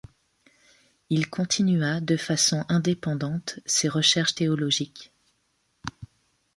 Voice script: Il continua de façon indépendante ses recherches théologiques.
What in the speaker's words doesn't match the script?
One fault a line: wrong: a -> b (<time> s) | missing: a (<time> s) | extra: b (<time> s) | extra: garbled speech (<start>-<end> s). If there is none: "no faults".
no faults